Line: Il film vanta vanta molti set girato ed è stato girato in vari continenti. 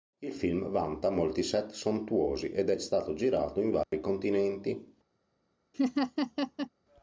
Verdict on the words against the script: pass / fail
fail